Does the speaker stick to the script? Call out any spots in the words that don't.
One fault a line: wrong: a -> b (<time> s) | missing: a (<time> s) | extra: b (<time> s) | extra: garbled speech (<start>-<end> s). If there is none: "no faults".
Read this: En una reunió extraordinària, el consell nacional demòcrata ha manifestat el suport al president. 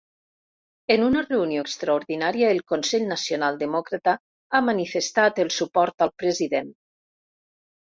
no faults